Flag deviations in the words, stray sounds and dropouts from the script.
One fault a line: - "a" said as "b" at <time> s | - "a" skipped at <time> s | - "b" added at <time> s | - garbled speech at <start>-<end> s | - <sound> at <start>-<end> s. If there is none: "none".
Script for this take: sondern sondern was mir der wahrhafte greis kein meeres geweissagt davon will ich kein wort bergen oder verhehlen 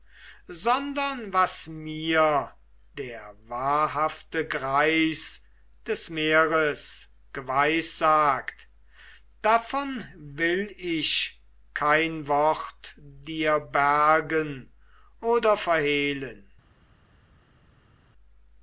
- "sondern" skipped at 1.3 s
- "kein" said as "des" at 5.8 s
- "dir" added at 13.0 s